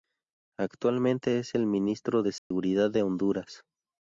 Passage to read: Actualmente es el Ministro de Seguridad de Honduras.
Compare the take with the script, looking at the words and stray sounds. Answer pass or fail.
fail